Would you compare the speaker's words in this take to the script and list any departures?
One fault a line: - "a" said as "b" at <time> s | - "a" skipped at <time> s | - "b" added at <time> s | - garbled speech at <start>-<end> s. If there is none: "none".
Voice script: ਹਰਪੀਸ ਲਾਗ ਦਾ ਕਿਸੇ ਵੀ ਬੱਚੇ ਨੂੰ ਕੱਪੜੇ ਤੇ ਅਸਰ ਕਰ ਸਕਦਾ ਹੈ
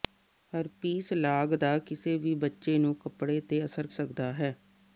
- "ਕਰ" skipped at 3.9 s